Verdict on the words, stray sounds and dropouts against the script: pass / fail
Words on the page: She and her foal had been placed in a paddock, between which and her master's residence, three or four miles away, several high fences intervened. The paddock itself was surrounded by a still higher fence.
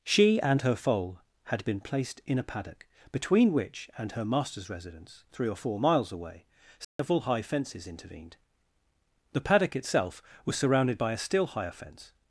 fail